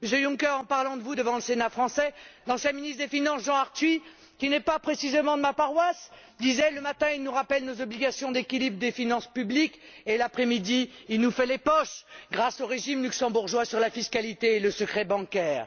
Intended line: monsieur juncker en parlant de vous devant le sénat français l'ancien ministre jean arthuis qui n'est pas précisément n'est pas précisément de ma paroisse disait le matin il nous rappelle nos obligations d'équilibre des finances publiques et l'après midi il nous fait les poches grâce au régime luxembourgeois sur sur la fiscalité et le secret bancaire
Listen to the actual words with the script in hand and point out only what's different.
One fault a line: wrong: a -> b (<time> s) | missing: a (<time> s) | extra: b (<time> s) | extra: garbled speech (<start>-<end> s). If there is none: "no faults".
extra: des finances (3.0 s)
missing: n'est pas précisément (5.4 s)
missing: sur (13.8 s)